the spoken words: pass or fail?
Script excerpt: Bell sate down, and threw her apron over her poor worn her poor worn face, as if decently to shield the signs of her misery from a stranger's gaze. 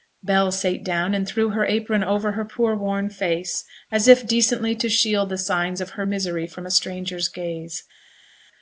fail